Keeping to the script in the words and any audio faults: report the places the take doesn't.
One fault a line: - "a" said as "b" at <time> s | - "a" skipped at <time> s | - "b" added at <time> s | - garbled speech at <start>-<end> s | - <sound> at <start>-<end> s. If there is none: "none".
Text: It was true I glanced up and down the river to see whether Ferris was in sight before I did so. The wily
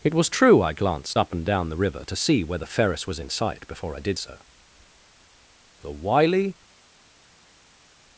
none